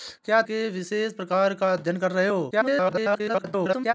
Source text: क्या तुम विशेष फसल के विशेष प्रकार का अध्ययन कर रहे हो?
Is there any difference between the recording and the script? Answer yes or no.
yes